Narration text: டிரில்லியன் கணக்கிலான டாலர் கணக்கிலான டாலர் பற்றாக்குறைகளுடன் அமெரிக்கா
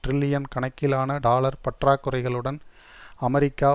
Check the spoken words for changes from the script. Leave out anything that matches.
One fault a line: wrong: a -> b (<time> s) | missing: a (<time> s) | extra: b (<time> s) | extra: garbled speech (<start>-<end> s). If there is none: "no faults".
missing: கணக்கிலான டாலர் (1.6 s)